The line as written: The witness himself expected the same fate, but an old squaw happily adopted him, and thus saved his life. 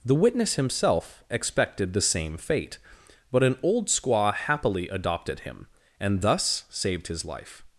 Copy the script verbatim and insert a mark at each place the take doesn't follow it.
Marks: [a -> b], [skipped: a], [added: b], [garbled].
The witness himself expected the same fate, but an old squaw happily adopted him, and thus saved his life.